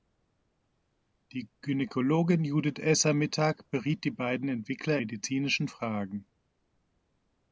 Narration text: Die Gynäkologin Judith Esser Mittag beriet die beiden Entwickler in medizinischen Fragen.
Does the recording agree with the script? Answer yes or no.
no